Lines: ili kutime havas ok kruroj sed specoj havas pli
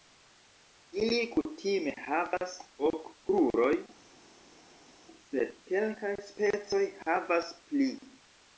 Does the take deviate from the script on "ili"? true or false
false